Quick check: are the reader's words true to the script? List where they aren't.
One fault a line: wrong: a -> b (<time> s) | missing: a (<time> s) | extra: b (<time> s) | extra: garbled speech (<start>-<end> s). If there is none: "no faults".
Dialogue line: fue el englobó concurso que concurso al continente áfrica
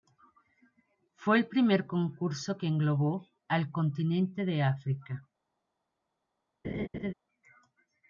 wrong: englobó -> primer (1.5 s)
wrong: concurso -> englobó (2.7 s)
extra: de (4.5 s)